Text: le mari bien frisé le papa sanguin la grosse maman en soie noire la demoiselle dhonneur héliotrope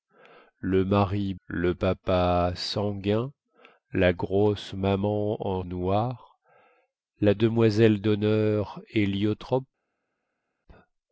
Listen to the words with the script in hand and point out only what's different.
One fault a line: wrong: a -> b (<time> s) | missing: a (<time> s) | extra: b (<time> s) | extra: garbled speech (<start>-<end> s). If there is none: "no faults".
missing: bien frisé (1.4 s)
missing: soie (5.6 s)